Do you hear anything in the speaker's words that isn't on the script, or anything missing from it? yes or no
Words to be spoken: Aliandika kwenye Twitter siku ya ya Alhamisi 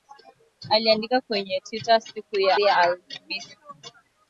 no